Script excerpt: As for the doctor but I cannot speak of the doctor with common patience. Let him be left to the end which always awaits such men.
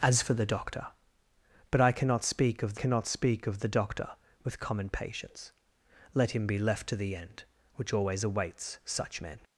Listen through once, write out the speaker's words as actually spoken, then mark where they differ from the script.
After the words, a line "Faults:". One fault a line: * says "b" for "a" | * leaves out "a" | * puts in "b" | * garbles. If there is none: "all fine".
As for the doctor but I cannot speak of cannot speak of the doctor with common patience. Let him be left to the end which always awaits such men.
Faults:
* puts in "cannot speak of"